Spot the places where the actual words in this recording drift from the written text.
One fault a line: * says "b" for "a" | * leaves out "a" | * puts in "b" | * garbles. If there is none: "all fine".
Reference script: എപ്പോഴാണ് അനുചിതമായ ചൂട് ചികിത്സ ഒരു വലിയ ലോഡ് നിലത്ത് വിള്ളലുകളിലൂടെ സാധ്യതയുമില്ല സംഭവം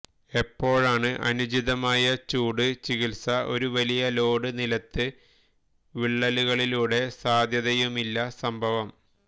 all fine